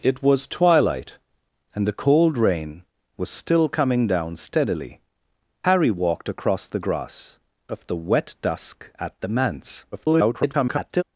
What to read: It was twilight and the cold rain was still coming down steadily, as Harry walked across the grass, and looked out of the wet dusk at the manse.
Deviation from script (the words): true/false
true